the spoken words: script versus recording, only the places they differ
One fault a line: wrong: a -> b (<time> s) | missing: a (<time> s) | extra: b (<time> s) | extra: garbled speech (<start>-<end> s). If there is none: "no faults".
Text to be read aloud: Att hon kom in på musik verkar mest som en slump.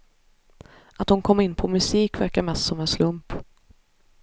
no faults